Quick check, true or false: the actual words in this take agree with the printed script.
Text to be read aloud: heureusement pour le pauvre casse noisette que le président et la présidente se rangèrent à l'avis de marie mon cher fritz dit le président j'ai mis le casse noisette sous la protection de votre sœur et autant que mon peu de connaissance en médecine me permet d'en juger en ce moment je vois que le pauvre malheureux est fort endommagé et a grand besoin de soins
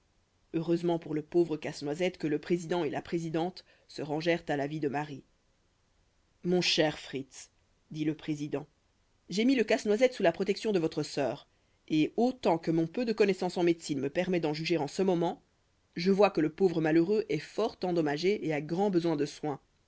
true